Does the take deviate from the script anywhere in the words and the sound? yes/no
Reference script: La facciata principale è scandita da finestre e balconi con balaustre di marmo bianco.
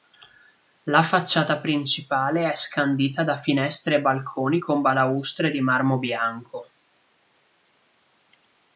no